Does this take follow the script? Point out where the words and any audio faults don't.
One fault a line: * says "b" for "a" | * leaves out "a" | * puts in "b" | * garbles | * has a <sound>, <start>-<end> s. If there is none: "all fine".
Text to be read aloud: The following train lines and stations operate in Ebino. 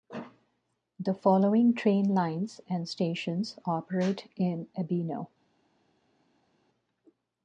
all fine